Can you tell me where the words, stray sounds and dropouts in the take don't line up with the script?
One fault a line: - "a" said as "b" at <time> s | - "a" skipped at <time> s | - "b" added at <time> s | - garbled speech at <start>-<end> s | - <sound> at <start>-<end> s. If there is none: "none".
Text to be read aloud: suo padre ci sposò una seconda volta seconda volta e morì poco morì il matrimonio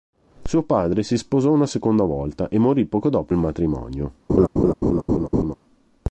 - "ci" said as "si" at 1.0 s
- "seconda volta" skipped at 2.5 s
- "morì" said as "dopo" at 3.1 s
- laugh at 4.3-5.6 s